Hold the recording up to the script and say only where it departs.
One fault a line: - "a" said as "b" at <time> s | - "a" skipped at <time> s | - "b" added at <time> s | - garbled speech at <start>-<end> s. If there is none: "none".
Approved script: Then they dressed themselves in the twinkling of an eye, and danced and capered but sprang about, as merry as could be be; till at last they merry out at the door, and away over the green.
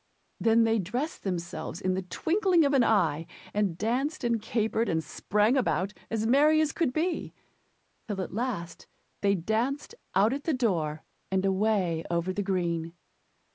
- "but" said as "and" at 4.9 s
- "be" skipped at 7.3 s
- "merry" said as "danced" at 9.3 s